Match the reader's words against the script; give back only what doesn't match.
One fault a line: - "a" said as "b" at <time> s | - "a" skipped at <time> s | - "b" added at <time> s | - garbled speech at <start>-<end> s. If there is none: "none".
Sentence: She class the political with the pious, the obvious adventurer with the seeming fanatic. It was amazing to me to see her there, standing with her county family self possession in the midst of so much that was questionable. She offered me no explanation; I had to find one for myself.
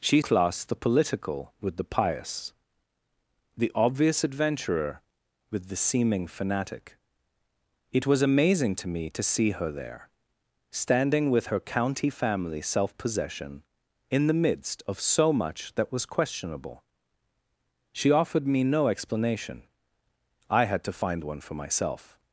none